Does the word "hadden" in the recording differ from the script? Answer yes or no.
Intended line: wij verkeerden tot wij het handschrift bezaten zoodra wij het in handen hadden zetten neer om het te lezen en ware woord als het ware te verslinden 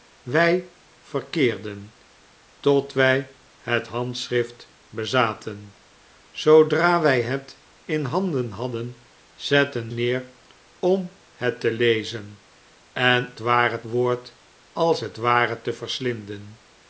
no